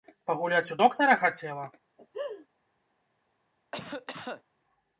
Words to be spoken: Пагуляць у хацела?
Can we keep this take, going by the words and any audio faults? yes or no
no